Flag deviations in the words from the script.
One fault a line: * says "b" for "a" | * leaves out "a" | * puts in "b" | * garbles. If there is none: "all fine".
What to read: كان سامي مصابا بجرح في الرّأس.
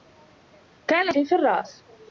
* leaves out "سامي مصابا بجرح"